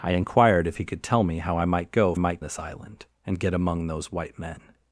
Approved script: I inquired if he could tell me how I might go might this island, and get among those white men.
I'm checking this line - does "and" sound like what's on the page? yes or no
yes